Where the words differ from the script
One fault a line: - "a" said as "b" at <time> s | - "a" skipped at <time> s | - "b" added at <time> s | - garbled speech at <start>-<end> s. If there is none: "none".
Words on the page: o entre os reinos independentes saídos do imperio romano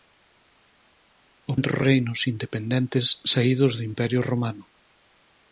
none